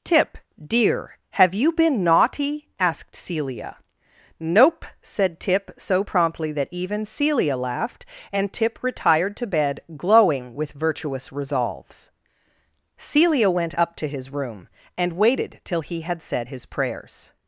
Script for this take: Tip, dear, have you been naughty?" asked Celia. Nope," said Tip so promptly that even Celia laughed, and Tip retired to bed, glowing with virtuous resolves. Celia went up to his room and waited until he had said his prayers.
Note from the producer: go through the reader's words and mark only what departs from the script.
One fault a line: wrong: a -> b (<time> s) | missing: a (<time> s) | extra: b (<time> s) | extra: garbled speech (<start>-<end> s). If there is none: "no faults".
wrong: until -> till (15.6 s)